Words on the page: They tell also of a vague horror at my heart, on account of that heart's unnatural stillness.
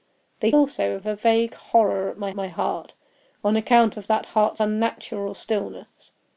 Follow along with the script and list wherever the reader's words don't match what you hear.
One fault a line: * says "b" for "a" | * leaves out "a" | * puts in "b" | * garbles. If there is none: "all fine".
* leaves out "tell"
* puts in "my"